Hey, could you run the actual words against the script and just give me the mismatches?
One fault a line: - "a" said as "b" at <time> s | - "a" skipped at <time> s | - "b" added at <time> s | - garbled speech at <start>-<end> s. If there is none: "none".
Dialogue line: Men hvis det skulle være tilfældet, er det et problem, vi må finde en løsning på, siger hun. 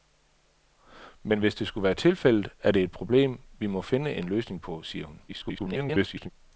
- garbled speech at 5.3-6.3 s